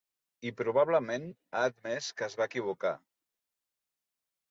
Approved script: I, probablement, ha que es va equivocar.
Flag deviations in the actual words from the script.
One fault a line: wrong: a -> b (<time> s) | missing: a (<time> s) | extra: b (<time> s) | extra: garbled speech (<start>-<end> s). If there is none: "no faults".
extra: admès (1.7 s)